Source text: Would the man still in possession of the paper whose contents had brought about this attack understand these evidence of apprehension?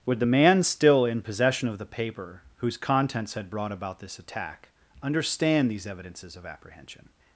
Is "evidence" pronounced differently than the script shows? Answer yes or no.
yes